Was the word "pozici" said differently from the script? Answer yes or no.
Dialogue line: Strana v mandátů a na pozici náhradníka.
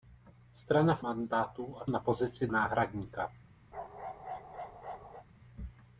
no